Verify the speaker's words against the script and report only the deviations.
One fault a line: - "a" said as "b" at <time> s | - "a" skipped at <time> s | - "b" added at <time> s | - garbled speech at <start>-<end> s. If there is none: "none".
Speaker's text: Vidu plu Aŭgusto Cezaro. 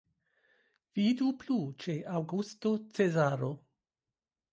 - "ĉe" added at 1.8 s